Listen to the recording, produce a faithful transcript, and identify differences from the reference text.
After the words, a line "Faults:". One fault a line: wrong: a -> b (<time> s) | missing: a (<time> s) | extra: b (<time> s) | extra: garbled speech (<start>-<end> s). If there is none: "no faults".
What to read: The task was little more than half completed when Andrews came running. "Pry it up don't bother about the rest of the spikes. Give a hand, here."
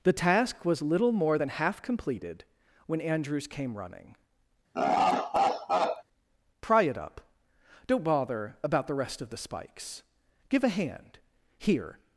The task was little more than half completed when Andrews came running. "Pry it up don't bother about the rest of the spikes. Give a hand, here."
Faults:
no faults